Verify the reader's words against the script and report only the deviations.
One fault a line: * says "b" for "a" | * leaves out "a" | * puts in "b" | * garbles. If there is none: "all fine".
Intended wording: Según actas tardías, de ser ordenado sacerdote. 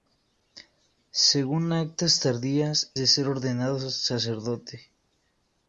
all fine